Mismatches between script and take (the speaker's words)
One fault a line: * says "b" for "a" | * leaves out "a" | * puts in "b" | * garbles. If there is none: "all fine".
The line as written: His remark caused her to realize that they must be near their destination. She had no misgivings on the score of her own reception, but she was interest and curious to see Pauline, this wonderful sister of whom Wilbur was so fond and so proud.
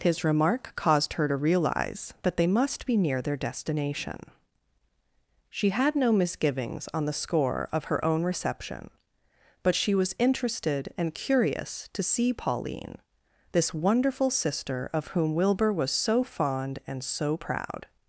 * says "interested" for "interest"